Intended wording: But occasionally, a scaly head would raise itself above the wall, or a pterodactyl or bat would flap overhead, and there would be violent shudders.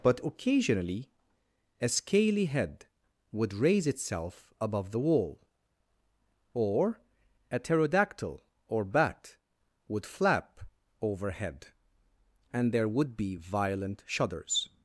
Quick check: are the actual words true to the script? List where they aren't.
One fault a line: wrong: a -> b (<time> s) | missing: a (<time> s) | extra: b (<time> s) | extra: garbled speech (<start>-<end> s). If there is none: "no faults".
no faults